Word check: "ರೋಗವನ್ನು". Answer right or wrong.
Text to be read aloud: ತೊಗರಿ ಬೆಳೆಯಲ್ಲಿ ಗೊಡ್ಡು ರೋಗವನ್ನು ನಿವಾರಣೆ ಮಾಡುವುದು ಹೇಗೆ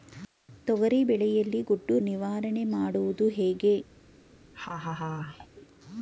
wrong